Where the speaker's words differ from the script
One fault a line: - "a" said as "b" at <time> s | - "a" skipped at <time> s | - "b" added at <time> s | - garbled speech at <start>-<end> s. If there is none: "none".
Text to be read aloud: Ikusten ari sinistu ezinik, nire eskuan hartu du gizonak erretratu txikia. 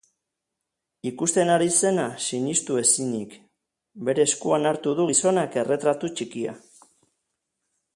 - "zena" added at 1.8 s
- "nire" said as "bere" at 4.1 s